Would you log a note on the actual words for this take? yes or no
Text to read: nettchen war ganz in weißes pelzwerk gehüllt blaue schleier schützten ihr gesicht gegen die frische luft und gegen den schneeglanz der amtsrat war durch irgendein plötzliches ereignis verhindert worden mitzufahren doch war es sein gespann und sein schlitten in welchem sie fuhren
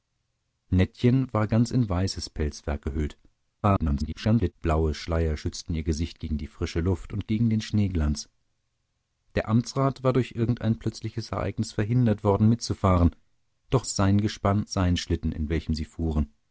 yes